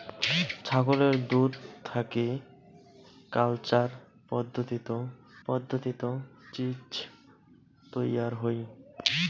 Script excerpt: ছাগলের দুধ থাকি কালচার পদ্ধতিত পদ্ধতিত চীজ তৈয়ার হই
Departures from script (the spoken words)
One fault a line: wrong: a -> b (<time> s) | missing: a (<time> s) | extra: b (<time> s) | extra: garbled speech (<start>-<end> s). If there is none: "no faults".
no faults